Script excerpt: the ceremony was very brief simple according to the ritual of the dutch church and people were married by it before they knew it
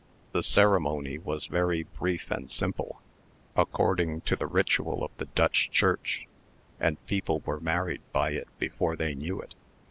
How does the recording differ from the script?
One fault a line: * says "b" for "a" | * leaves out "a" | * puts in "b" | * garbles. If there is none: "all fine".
* puts in "and"